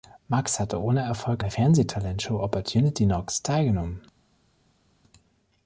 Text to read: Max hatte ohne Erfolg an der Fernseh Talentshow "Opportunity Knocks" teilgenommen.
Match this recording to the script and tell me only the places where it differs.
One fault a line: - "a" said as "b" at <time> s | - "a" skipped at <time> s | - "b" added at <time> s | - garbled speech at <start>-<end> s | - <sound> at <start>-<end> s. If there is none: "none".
- "an" skipped at 1.4 s